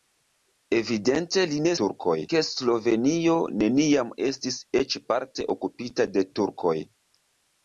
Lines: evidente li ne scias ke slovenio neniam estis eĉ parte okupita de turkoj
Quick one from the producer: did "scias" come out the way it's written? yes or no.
no